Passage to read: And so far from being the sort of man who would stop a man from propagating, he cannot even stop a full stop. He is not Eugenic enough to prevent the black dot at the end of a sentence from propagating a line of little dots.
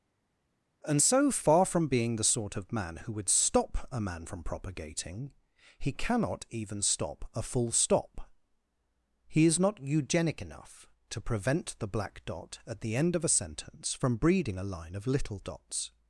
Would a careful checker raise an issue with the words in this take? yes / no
yes